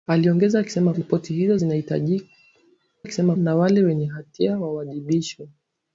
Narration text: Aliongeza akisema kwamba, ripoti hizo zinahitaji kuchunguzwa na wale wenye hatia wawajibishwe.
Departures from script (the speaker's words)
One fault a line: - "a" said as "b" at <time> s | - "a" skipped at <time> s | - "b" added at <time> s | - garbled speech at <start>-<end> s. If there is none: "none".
- "kwamba" skipped at 0.9 s
- "kuchunguzwa" said as "akisema" at 3.0 s